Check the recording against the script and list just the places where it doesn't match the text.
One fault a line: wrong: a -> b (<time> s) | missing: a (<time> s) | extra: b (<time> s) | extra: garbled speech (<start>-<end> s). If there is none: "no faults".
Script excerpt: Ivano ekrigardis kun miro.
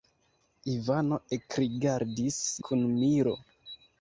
no faults